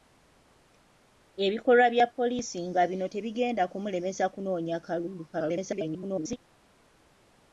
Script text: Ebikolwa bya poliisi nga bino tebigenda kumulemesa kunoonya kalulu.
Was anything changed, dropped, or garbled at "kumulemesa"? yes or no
no